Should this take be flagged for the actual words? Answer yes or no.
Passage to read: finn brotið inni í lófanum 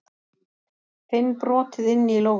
no